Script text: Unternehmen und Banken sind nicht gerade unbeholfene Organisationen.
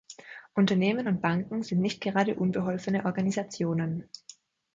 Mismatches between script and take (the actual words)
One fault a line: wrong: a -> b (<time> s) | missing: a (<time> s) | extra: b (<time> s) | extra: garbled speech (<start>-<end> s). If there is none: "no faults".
no faults